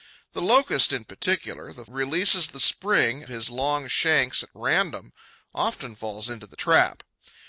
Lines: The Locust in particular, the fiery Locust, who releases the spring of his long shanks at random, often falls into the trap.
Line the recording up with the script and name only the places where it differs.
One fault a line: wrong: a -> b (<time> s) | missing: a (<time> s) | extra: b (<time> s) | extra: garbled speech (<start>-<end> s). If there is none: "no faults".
missing: fiery Locust who (1.9 s)
missing: of (3.2 s)